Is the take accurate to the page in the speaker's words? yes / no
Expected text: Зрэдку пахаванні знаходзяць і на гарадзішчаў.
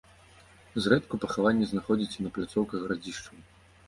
no